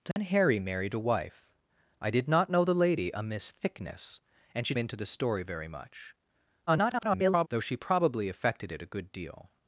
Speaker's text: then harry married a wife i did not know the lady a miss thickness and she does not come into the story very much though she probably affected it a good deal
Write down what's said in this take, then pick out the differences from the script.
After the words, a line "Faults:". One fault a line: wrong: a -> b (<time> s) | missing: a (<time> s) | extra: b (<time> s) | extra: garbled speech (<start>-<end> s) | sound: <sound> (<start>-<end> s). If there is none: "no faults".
then harry married a wife i did not know the lady a miss thickness and she into the story very much [garbled] though she probably affected it a good deal
Faults:
sound: dropout (0.1-0.2 s)
missing: does not come (4.7 s)
extra: garbled speech (6.7-7.5 s)